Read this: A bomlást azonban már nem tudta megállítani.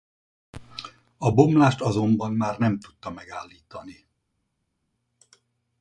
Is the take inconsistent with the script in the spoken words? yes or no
no